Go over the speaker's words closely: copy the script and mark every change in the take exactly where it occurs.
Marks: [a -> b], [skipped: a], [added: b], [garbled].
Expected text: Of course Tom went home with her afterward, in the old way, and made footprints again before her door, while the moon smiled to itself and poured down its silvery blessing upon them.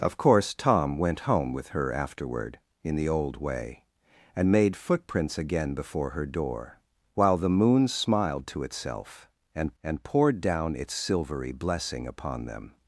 Of course Tom went home with her afterward, in the old way, and made footprints again before her door, while the moon smiled to itself and [added: and] poured down its silvery blessing upon them.